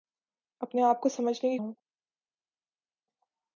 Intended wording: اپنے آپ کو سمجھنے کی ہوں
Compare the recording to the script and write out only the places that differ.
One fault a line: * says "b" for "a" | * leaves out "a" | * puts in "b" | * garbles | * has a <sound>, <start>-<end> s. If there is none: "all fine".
all fine